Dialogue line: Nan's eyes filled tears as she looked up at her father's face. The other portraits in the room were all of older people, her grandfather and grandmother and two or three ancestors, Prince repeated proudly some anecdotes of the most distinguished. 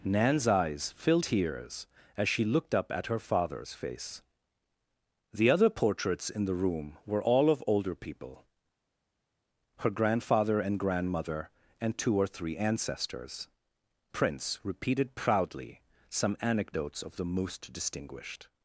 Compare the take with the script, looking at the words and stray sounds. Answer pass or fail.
pass